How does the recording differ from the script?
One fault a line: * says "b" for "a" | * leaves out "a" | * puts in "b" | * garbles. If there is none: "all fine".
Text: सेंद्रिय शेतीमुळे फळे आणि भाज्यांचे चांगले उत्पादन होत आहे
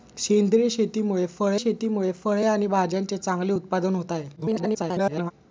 * puts in "शेतीमुळे फळे"
* garbles